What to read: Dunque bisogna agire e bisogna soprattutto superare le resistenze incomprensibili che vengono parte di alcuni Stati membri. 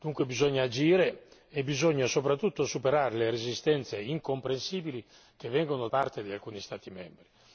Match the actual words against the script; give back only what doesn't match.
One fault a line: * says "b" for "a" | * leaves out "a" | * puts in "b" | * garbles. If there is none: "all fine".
all fine